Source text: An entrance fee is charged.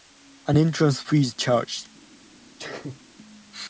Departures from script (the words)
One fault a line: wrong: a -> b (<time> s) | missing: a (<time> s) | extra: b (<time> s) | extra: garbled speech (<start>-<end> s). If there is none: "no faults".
no faults